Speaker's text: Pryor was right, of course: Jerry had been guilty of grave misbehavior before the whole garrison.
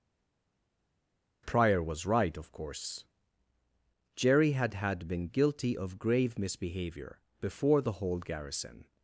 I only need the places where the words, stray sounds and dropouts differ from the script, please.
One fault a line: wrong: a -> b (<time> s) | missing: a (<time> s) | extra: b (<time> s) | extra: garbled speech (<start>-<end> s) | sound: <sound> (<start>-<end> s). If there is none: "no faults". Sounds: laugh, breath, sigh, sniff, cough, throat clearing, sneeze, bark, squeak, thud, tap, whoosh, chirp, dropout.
extra: had (4.7 s)